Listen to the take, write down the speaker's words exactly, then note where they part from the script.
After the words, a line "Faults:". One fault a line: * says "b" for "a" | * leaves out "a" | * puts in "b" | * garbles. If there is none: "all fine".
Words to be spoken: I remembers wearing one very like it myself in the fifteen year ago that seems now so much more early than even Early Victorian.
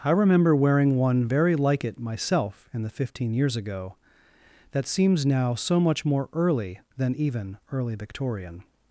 I remember wearing one very like it myself in the fifteen years ago that seems now so much more early than even Early Victorian.
Faults:
* says "remember" for "remembers"
* says "years" for "year"